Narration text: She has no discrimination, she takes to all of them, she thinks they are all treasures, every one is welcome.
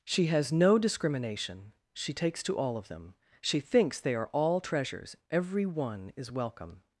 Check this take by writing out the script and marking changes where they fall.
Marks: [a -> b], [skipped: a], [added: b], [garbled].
She has no discrimination, she takes to all of them, she thinks they are all treasures, every one is welcome.